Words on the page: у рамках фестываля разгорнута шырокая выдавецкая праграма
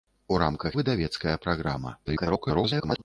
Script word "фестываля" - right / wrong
wrong